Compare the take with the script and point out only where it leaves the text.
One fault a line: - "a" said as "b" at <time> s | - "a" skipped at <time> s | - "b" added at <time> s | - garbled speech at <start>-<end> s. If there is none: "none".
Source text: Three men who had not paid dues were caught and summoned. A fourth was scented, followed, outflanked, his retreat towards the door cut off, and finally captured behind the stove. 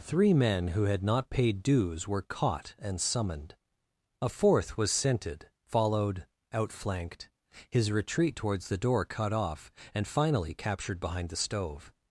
none